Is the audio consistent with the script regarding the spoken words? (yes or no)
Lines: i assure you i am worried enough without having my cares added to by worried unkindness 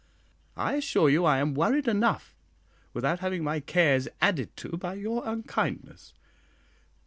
no